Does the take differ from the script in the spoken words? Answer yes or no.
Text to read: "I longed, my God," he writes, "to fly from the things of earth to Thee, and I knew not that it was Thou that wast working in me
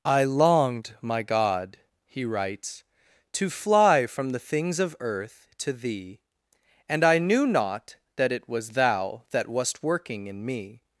no